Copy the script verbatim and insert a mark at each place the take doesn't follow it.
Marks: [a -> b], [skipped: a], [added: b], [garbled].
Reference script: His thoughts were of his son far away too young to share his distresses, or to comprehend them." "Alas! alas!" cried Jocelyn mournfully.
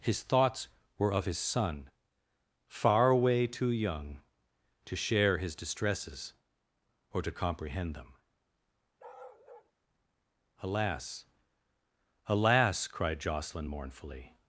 His thoughts were of his son far away too young to share his distresses, or to comprehend them." "Alas! alas!" cried Jocelyn mournfully.